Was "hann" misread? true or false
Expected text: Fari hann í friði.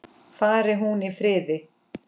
true